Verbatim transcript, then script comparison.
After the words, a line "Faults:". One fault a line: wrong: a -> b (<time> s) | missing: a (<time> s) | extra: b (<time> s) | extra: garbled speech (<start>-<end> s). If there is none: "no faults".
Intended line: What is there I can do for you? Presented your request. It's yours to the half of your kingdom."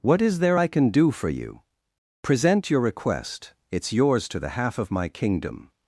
What is there I can do for you? Present your request. It's yours to the half of my kingdom."
Faults:
wrong: Presented -> Present (2.2 s)
wrong: your -> my (4.9 s)